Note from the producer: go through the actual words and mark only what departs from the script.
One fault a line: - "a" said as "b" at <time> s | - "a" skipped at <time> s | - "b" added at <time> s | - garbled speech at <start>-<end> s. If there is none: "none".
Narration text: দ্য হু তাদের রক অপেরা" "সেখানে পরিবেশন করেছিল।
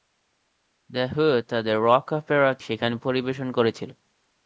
none